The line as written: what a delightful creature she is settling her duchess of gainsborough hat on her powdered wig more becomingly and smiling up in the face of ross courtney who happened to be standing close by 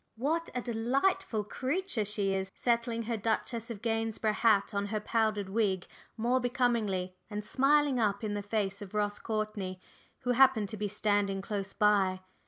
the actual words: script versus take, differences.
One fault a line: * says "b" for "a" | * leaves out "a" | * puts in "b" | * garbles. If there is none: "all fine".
all fine